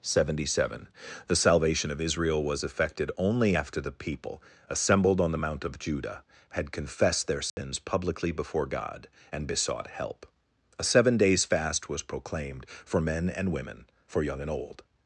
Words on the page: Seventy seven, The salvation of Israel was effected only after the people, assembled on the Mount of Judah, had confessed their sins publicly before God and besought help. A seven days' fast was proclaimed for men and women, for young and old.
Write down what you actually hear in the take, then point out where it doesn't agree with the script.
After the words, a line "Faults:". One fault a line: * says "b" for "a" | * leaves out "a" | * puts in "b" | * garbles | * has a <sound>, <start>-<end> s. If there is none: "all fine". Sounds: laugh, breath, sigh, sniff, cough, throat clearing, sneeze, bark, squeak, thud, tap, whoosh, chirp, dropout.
Seventy seven, The salvation of Israel was effected only after the people, assembled on the Mount of Judah, had confessed their sins publicly before God and besought help. A seven days' fast was proclaimed for men and women, for young and old.
Faults:
* has a dropout, 7.5-7.6 s